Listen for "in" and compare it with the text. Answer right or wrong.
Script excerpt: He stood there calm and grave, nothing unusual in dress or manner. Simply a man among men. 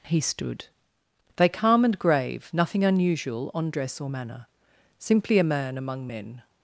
wrong